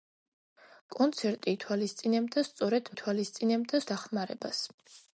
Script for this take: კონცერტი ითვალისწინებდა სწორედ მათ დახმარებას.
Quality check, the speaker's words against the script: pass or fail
fail